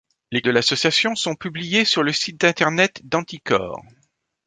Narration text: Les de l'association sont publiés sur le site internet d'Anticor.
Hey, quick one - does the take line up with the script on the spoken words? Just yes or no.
yes